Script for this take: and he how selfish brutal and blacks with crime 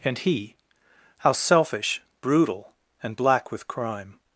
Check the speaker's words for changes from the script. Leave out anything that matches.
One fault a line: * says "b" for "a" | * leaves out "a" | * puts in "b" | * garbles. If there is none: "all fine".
* says "black" for "blacks"